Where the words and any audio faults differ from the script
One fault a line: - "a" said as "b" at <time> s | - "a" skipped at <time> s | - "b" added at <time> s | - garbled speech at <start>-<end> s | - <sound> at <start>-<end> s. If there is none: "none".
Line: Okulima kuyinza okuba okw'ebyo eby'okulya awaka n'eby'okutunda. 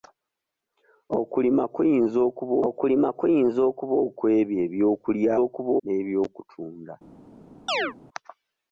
- "okulima kuyinza okuba" added at 2.7 s
- "awaka" said as "okuba" at 5.4 s
- chirp at 7.7-7.9 s